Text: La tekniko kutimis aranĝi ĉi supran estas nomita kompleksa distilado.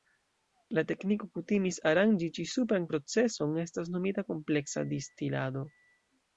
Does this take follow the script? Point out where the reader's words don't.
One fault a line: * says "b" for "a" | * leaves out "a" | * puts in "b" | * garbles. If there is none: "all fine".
* puts in "proceson"